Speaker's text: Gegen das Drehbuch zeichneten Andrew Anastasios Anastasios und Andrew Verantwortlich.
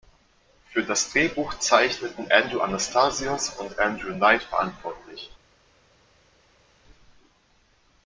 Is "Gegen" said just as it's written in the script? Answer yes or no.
no